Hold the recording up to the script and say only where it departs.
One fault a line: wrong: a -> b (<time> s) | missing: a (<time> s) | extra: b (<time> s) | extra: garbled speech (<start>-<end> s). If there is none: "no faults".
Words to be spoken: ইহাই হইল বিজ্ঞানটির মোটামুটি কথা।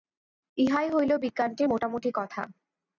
no faults